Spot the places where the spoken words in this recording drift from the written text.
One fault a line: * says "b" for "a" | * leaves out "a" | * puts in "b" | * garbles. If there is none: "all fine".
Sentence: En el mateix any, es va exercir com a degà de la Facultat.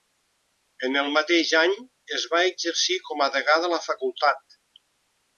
all fine